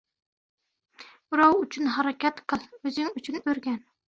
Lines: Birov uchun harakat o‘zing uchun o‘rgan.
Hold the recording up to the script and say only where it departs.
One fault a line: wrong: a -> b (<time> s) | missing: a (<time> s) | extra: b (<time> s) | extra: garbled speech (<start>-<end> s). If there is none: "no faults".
extra: qil (2.5 s)